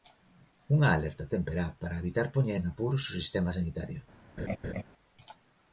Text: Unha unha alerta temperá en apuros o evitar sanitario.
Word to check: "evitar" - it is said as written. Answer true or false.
false